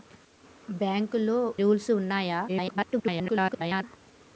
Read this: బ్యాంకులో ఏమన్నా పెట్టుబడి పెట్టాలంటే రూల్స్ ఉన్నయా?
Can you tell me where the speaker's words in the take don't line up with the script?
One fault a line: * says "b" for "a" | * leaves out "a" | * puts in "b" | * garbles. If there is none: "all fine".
* leaves out "ఏమన్నా పెట్టుబడి పెట్టాలంటే"
* garbles